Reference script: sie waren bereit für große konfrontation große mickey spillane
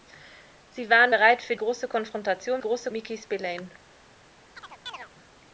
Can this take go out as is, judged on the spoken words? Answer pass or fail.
pass